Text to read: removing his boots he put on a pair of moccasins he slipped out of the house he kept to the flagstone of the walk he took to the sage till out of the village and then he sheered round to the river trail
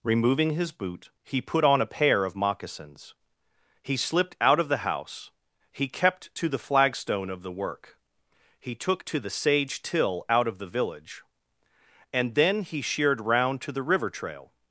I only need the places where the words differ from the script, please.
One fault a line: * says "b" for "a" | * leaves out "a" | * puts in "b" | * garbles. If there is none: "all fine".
* says "boot" for "boots"
* says "work" for "walk"